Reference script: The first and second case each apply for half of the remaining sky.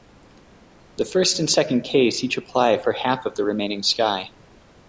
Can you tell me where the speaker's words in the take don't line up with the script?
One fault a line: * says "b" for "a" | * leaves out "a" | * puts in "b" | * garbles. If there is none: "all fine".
all fine